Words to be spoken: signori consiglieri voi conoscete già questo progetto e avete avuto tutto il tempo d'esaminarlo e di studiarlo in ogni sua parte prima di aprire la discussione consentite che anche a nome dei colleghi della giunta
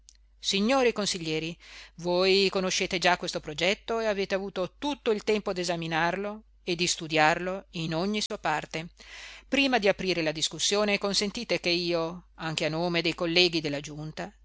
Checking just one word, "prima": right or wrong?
right